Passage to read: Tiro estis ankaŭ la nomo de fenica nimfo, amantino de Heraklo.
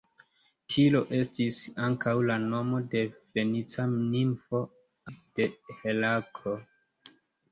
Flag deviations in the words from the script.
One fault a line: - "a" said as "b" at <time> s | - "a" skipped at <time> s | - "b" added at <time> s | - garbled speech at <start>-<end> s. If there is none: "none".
- "amantino" skipped at 4.7 s